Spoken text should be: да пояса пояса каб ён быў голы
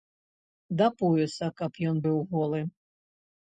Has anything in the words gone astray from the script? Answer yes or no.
yes